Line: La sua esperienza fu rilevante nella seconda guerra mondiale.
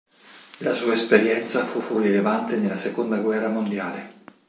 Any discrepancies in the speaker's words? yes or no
yes